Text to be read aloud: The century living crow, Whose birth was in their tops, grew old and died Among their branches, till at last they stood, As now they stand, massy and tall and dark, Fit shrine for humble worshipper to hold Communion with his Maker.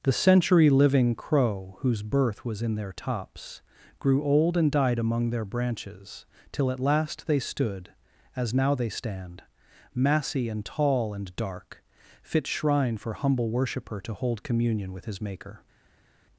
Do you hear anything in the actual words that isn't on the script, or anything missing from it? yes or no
no